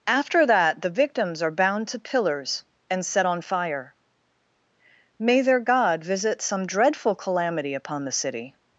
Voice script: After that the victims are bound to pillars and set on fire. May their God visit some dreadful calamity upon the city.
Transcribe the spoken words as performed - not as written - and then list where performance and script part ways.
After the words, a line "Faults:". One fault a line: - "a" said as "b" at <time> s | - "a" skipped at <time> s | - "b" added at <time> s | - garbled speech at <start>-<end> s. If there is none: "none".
After that the victims are bound to pillars and set on fire. May their God visit some dreadful calamity upon the city.
Faults:
none